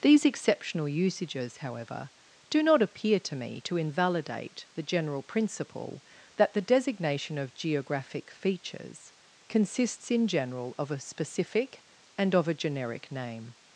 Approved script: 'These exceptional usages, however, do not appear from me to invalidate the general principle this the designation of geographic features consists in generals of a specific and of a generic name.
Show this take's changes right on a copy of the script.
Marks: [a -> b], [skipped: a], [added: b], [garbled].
'These exceptional usages, however, do not appear [from -> to] me to invalidate the general principle [this -> that] the designation of geographic features consists in [generals -> general] of a specific and of a generic name.